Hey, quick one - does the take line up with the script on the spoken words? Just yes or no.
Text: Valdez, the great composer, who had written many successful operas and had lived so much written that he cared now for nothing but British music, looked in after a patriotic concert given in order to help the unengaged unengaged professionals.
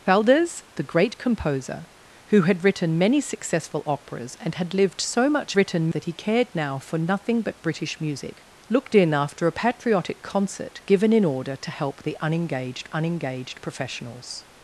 yes